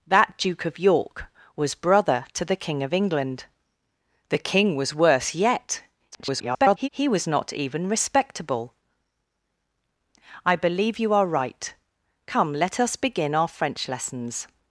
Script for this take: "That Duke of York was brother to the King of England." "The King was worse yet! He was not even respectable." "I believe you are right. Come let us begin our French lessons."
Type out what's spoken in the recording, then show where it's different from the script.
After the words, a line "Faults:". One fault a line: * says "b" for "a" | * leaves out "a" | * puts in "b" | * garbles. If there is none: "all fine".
"That Duke of York was brother to the King of England." "The King was worse yet! [garbled] He was not even respectable." "I believe you are right. Come let us begin our French lessons."
Faults:
* garbles